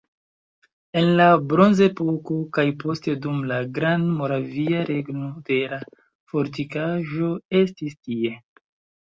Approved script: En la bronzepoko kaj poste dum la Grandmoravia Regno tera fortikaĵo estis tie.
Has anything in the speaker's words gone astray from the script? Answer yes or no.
no